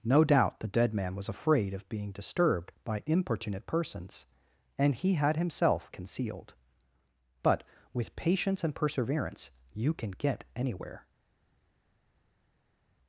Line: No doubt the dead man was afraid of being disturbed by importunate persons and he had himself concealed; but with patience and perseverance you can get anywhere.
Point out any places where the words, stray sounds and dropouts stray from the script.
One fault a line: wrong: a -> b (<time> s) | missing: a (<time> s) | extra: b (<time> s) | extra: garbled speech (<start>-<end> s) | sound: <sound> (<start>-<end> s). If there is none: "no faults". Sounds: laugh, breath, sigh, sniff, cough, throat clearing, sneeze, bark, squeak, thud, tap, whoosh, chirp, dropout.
no faults